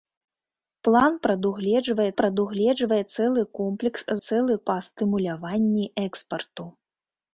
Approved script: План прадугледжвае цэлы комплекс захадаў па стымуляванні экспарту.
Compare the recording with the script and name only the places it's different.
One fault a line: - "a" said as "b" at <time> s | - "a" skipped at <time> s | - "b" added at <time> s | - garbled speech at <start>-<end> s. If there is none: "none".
- "прадугледжвае" added at 2.2 s
- "захадаў" said as "цэлы" at 4.3 s